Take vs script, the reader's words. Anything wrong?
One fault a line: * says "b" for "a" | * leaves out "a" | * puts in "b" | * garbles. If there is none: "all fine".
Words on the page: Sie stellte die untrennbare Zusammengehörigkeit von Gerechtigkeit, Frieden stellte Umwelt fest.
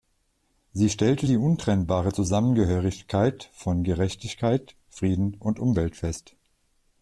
* says "und" for "stellte"